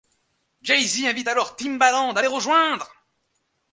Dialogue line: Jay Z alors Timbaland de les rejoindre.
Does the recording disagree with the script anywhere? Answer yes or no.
yes